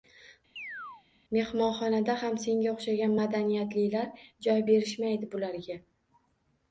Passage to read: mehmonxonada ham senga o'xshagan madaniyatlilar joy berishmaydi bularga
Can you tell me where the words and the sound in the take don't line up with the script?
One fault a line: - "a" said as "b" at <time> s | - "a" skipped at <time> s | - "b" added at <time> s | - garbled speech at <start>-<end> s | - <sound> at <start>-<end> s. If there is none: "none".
- chirp at 0.6-1.0 s